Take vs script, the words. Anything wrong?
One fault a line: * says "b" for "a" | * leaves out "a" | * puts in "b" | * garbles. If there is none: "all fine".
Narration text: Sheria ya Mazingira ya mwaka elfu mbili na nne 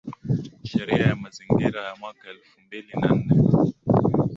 all fine